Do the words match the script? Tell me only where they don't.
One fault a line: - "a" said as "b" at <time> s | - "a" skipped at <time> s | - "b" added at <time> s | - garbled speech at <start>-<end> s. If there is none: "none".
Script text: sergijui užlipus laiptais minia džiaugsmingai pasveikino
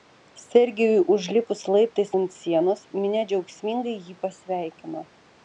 - "ant sienos" added at 2.2 s
- "jį" added at 4.1 s